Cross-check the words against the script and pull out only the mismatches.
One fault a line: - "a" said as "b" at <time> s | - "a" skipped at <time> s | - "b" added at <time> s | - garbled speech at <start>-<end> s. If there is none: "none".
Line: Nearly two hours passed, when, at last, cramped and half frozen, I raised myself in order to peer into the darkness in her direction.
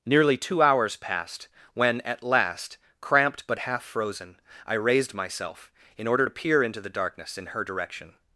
- "and" said as "but" at 3.5 s